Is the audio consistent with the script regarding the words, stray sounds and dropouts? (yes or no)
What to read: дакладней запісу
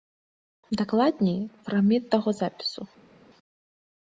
no